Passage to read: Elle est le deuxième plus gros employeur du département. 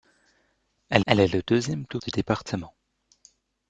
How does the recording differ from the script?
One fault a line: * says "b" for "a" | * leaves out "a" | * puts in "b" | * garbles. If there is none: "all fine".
* puts in "elle"
* leaves out "gros employeur"